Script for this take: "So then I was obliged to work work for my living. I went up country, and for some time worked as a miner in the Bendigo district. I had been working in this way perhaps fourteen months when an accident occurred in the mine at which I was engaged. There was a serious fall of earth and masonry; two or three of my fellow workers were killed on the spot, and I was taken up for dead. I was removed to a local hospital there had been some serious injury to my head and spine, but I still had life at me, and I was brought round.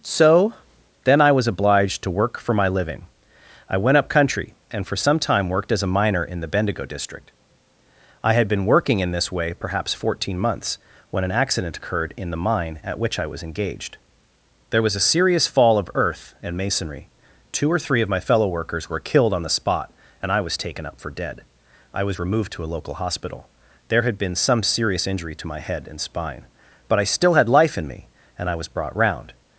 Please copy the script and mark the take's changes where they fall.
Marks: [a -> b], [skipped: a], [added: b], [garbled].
"So then I was obliged to work [skipped: work] for my living. I went up country, and for some time worked as a miner in the Bendigo district. I had been working in this way perhaps fourteen months when an accident occurred in the mine at which I was engaged. There was a serious fall of earth and masonry; two or three of my fellow workers were killed on the spot, and I was taken up for dead. I was removed to a local hospital there had been some serious injury to my head and spine, but I still had life [at -> in] me, and I was brought round.